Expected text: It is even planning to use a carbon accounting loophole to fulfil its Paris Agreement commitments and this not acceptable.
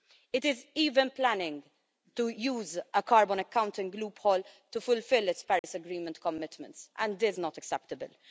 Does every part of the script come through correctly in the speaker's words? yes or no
yes